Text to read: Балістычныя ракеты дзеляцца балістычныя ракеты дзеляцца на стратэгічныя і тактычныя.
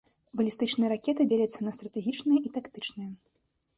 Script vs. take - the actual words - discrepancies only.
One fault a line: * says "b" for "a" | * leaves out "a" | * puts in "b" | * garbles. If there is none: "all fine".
* leaves out "балістычныя ракеты дзеляцца"